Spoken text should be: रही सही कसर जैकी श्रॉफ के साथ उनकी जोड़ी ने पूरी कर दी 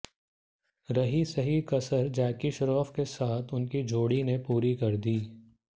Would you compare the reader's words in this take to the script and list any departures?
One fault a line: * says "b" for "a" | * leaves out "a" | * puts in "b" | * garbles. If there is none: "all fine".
all fine